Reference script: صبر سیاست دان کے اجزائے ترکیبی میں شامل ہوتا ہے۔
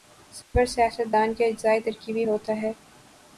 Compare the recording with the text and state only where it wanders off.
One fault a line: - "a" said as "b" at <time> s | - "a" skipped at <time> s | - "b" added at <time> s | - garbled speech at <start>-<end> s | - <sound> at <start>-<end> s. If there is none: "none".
- dropout at 0.4-0.5 s
- "میں شامل" skipped at 2.2 s